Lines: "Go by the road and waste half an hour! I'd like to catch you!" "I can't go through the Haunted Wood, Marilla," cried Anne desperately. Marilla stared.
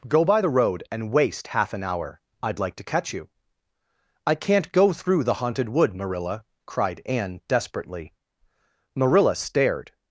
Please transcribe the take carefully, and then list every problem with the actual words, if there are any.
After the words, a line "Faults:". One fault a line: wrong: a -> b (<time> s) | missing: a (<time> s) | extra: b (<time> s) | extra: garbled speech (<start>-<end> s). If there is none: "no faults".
"Go by the road and waste half an hour! I'd like to catch you!" "I can't go through the Haunted Wood, Marilla," cried Anne desperately. Marilla stared.
Faults:
no faults